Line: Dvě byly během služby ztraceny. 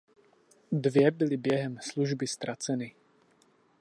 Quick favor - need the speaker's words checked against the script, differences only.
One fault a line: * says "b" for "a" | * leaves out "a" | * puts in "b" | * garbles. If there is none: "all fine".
all fine